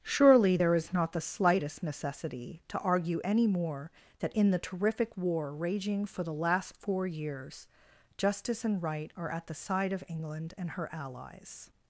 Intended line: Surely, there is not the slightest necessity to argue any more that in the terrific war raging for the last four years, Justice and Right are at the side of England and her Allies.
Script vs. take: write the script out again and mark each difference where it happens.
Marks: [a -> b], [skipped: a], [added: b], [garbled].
Surely, there is not the slightest necessity to argue any more that in the terrific war raging for the last four years, Justice and Right are at the side of England and her Allies.